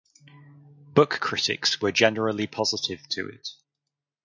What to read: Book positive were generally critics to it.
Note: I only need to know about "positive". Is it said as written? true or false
false